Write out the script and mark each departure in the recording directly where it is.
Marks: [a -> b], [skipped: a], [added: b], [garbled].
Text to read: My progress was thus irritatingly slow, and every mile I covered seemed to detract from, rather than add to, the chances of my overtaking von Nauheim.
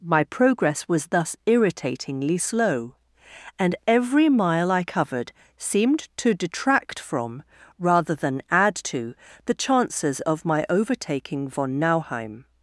My progress was thus irritatingly slow, and every mile I covered seemed to detract from, rather than add to, the chances of my overtaking von Nauheim.